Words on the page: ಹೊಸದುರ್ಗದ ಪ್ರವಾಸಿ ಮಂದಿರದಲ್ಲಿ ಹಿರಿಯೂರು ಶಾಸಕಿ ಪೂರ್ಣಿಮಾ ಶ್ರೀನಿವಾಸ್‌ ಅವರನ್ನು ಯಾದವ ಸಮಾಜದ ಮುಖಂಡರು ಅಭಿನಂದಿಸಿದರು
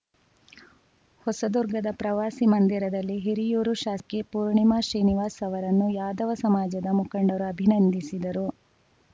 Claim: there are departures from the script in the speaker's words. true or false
false